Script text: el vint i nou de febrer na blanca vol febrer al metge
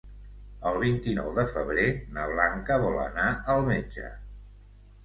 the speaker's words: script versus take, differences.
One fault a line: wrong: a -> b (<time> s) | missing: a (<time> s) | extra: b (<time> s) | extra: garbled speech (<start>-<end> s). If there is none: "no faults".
wrong: febrer -> anar (3.1 s)